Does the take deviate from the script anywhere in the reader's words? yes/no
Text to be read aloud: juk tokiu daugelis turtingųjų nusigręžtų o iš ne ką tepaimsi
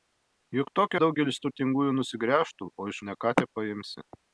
no